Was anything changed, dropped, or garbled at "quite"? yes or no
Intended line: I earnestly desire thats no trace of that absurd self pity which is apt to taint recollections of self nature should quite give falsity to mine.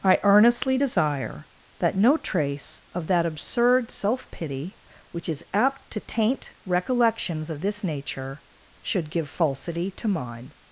yes